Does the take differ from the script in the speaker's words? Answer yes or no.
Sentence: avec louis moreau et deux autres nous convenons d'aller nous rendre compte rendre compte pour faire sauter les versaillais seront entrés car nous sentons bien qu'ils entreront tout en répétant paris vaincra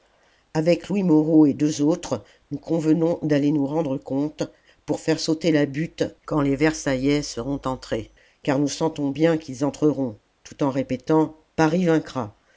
yes